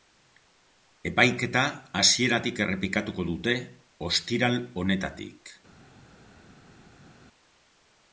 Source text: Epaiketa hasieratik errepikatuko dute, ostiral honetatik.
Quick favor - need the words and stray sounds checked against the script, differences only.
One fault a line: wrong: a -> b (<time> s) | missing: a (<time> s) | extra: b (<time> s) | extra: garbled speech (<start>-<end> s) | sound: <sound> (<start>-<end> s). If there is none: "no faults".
no faults